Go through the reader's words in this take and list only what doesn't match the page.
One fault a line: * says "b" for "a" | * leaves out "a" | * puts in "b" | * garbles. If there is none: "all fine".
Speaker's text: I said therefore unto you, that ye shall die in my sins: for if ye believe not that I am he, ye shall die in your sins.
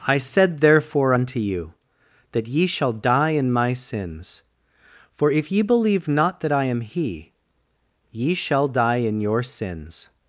all fine